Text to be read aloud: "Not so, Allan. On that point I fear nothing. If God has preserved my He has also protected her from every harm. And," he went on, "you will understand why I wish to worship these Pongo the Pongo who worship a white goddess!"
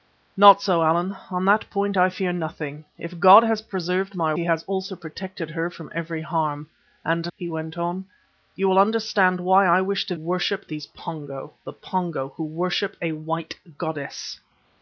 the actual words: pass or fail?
pass